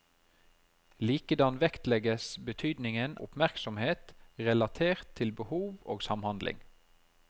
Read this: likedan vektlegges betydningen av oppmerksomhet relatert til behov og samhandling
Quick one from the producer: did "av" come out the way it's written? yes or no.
no